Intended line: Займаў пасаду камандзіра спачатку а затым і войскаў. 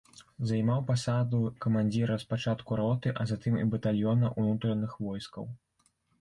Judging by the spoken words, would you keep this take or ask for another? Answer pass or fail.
fail